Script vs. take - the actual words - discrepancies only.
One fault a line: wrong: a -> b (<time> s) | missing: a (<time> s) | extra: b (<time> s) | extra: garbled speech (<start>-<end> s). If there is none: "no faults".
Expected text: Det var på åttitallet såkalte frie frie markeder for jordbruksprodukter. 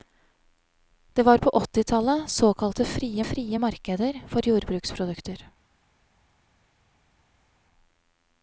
no faults